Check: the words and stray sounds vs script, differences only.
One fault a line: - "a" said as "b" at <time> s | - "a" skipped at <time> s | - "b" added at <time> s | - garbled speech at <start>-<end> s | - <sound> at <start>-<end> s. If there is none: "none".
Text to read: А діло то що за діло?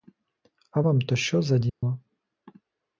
- "діло" said as "вам" at 0.8 s
- dropout at 1.7-1.8 s